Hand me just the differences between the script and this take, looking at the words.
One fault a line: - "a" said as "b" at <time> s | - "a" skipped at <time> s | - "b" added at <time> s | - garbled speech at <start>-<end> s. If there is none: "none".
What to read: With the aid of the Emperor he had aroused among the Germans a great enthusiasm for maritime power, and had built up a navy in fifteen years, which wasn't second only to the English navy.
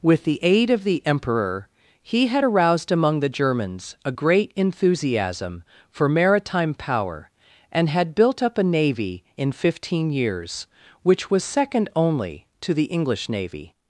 - "wasn't" said as "was" at 11.3 s